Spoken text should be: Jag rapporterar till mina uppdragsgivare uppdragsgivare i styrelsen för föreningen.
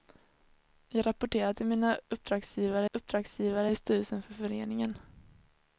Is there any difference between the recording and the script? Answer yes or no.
no